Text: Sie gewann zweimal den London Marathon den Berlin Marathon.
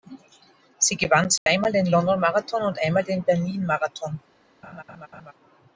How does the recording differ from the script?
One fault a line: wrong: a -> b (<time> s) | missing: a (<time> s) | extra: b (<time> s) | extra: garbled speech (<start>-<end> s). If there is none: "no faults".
extra: und einmal (2.6 s)